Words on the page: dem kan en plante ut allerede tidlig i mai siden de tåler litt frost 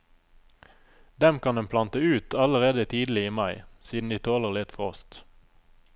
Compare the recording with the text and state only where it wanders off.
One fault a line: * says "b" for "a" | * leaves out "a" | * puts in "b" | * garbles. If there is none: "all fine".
all fine